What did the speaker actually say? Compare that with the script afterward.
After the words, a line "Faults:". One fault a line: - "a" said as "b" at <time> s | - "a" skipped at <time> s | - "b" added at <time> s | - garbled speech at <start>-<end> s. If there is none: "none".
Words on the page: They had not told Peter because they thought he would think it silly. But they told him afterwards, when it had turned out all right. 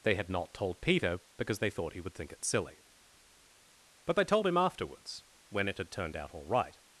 They had not told Peter because they thought he would think it silly. But they told him afterwards, when it had turned out all right.
Faults:
none